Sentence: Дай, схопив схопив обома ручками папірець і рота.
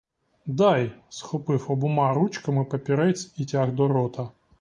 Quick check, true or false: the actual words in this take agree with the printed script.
false